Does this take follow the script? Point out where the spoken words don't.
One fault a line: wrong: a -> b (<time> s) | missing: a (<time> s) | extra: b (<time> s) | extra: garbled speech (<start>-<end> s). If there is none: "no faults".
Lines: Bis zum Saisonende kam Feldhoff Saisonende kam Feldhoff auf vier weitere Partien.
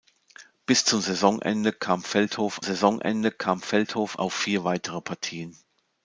no faults